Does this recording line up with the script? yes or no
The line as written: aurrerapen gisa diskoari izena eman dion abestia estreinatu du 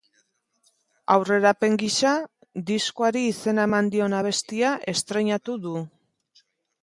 yes